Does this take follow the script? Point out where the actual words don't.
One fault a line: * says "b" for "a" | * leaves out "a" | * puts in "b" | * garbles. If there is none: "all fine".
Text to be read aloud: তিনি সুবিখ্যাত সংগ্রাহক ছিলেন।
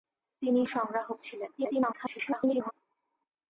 * leaves out "সুবিখ্যাত"
* garbles